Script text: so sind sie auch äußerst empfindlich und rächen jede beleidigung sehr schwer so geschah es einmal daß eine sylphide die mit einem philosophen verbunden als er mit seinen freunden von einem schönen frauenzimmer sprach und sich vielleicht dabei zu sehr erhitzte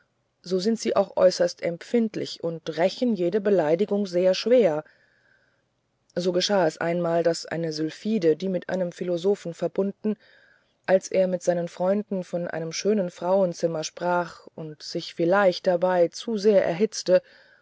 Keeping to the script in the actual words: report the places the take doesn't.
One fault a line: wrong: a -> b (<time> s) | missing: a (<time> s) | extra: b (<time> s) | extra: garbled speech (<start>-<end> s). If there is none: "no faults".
no faults